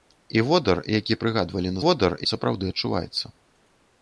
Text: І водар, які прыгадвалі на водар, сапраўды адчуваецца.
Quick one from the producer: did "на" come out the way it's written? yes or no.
yes